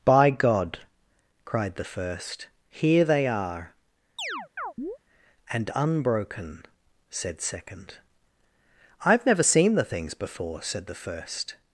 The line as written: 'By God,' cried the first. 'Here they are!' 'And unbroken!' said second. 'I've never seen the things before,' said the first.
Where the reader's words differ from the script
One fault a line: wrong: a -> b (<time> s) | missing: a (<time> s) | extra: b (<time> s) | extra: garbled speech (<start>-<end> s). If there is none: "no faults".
no faults